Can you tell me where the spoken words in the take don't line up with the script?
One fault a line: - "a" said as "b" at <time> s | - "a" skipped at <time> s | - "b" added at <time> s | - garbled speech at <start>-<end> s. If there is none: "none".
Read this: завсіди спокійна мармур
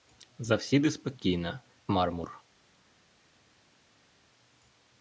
none